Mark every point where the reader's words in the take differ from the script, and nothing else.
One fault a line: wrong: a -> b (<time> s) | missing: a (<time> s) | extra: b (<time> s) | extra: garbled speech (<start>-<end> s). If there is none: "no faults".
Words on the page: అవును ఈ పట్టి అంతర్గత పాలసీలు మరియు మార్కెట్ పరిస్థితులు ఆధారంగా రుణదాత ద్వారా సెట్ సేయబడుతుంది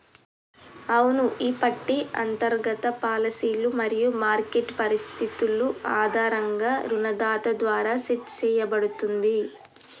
no faults